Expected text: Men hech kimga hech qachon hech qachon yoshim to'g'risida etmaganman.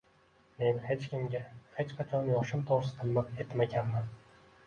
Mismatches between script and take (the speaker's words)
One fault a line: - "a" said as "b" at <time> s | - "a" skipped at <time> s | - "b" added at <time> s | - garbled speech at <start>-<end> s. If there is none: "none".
- "hech qachon" skipped at 2.3 s
- "miq" added at 3.1 s